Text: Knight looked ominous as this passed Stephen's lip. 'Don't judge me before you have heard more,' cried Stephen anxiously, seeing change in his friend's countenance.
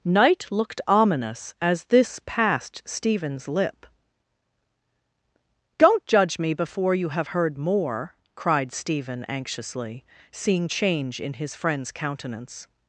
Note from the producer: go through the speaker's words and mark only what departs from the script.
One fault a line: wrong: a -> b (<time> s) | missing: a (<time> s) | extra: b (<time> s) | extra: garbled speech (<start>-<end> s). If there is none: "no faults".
no faults